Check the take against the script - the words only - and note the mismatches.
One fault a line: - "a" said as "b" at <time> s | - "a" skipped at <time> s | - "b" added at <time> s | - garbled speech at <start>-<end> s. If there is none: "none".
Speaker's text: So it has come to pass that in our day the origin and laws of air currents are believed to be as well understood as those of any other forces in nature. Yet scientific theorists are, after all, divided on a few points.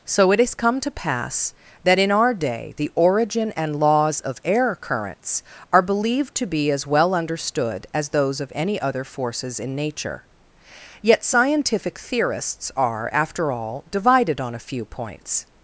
none